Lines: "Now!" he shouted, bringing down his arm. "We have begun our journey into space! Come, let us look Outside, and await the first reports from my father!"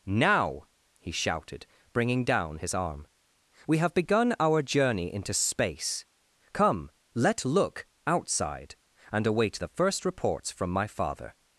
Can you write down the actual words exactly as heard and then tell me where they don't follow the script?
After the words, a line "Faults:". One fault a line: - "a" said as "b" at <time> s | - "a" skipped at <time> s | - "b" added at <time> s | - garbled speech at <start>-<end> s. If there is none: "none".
"Now!" he shouted, bringing down his arm. "We have begun our journey into space! Come, let look Outside, and await the first reports from my father!"
Faults:
- "us" skipped at 7.5 s